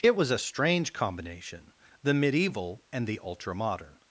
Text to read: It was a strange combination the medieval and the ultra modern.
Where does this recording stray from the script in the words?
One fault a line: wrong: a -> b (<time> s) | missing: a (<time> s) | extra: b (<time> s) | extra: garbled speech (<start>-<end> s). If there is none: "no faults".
no faults